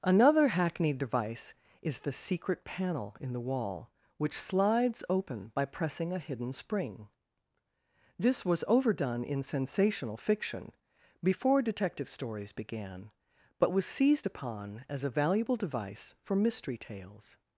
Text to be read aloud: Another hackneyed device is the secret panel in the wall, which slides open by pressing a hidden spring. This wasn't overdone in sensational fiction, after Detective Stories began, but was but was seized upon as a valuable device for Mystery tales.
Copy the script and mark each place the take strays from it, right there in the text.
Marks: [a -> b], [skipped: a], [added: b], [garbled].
Another hackneyed device is the secret panel in the wall, which slides open by pressing a hidden spring. This [wasn't -> was] overdone in sensational fiction, [after -> before] Detective Stories began, but was [skipped: but was] seized upon as a valuable device for Mystery tales.